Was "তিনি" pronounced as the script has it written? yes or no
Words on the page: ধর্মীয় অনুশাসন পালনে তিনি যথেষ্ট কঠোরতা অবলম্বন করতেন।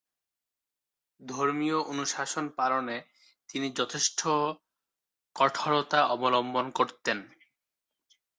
yes